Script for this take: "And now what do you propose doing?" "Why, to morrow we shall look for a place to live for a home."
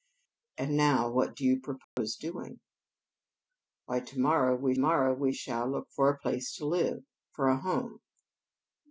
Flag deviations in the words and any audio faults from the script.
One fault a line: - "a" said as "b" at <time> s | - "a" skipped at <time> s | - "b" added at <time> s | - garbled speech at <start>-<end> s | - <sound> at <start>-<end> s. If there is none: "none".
- dropout at 1.8-2.0 s
- "morrow we" added at 4.8 s